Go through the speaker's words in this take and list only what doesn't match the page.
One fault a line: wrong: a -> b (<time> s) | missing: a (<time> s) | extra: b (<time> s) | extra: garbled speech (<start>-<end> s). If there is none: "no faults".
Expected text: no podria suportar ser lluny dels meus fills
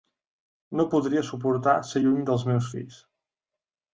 no faults